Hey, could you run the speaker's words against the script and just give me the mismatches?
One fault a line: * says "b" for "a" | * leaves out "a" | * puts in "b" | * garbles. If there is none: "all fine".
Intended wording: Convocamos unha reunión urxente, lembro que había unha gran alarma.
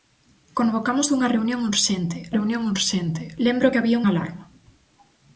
* puts in "reunión urxente"
* leaves out "unha gran"